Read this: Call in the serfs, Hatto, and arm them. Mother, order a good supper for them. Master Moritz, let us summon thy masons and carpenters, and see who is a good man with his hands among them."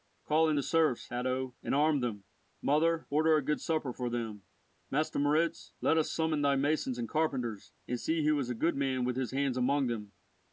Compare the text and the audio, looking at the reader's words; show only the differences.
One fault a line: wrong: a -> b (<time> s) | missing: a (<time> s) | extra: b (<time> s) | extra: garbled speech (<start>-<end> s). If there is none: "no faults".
no faults